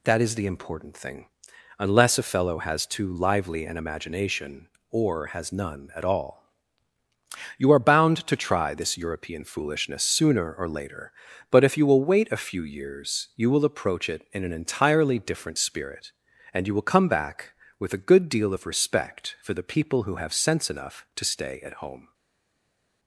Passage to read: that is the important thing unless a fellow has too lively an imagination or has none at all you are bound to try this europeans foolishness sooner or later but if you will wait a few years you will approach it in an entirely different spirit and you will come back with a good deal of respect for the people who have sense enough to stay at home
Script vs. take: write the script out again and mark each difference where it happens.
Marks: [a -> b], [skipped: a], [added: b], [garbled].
that is the important thing unless a fellow has too lively an imagination or has none at all you are bound to try this [europeans -> european] foolishness sooner or later but if you will wait a few years you will approach it in an entirely different spirit and you will come back with a good deal of respect for the people who have sense enough to stay at home